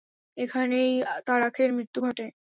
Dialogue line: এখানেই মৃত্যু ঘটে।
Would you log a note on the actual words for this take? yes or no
yes